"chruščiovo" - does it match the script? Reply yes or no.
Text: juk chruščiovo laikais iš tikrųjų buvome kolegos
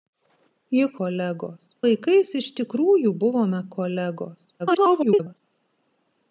no